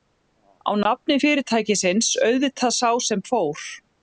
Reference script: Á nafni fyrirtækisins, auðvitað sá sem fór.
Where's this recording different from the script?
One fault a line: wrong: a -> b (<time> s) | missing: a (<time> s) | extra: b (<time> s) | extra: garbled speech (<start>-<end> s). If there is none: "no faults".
no faults